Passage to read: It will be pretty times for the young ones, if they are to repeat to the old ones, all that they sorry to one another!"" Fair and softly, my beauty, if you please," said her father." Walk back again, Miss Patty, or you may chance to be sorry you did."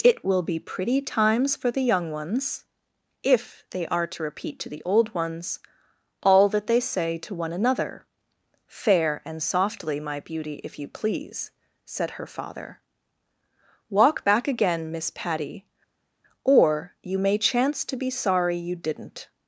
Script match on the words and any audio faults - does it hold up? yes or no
no